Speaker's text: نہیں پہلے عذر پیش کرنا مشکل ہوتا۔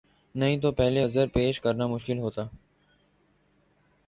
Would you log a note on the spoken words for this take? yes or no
yes